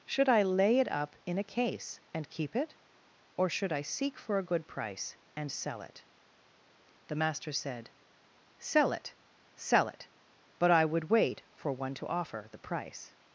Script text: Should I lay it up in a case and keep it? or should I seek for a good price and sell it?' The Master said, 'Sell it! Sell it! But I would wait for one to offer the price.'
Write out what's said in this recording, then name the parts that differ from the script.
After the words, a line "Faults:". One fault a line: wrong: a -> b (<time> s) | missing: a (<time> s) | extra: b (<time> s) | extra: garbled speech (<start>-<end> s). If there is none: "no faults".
Should I lay it up in a case and keep it? or should I seek for a good price and sell it?' The Master said, 'Sell it! Sell it! But I would wait for one to offer the price.'
Faults:
no faults